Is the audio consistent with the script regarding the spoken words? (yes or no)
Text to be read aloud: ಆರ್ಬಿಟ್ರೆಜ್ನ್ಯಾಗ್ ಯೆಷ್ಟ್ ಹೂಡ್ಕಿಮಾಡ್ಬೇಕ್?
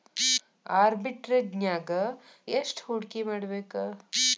yes